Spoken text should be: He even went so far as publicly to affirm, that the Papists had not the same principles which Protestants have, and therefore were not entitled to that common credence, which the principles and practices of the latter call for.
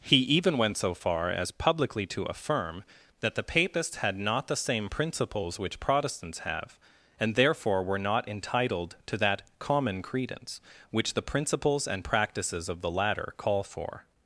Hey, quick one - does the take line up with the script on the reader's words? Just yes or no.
yes